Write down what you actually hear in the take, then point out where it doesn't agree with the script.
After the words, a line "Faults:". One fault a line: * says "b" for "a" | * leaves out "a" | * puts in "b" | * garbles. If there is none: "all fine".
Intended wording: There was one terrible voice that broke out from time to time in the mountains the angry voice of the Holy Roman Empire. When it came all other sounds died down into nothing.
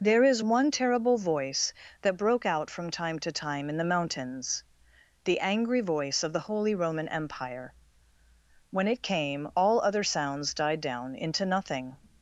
There is one terrible voice that broke out from time to time in the mountains the angry voice of the Holy Roman Empire. When it came all other sounds died down into nothing.
Faults:
* says "is" for "was"